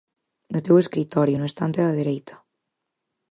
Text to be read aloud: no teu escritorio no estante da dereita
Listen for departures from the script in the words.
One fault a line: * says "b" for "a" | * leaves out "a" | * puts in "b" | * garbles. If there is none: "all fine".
all fine